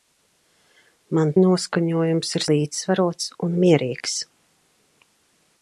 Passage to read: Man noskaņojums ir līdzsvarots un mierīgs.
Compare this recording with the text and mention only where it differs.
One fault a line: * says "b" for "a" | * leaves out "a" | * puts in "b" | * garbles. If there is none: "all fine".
all fine